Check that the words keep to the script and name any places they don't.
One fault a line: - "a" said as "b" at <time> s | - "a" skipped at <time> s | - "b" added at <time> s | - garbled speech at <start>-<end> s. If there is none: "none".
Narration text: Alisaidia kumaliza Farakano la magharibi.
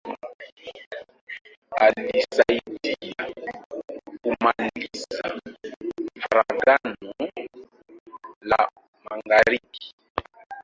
none